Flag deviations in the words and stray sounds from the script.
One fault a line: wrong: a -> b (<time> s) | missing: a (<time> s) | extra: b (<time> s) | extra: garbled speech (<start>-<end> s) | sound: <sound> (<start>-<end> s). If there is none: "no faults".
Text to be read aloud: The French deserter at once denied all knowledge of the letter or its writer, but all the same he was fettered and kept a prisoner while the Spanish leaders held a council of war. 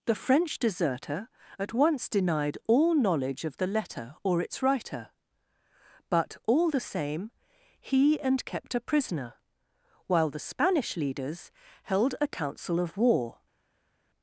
missing: was fettered (8.2 s)